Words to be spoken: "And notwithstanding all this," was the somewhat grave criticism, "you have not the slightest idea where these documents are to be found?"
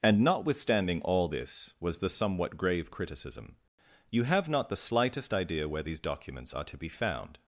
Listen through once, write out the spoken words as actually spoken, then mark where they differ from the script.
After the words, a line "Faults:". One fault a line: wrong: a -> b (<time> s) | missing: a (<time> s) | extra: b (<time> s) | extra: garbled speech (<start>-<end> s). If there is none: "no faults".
"And notwithstanding all this," was the somewhat grave criticism, "you have not the slightest idea where these documents are to be found?"
Faults:
no faults